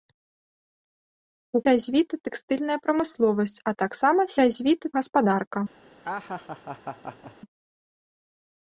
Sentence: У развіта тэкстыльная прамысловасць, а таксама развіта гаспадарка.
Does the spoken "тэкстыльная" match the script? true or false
true